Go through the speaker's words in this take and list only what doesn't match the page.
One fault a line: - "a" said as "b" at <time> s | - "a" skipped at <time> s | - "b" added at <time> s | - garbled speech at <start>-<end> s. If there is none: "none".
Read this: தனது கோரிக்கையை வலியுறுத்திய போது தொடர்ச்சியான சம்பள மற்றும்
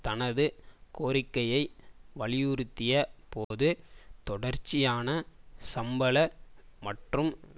none